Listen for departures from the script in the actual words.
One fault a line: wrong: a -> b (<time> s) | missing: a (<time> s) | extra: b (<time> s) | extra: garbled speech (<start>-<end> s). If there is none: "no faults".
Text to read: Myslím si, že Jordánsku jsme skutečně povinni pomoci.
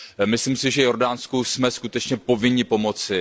no faults